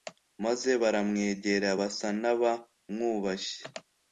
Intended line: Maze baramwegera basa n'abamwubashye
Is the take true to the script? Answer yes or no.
yes